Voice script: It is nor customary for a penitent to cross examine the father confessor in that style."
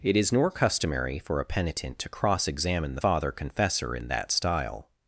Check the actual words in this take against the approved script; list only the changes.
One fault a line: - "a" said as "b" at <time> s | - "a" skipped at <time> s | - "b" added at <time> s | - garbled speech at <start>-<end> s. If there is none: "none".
none